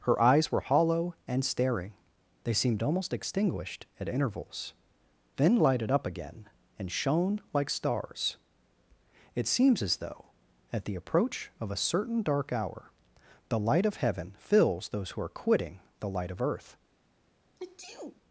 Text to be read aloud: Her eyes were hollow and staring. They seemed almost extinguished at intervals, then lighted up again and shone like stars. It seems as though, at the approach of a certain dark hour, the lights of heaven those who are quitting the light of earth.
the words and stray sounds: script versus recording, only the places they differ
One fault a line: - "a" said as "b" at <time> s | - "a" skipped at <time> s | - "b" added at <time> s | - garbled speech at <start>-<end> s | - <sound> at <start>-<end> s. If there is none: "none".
- "lights" said as "light" at 13.6 s
- "fills" added at 14.4 s
- sneeze at 17.6-18.2 s